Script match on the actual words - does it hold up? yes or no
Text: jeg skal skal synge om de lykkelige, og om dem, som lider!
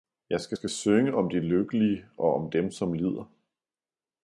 yes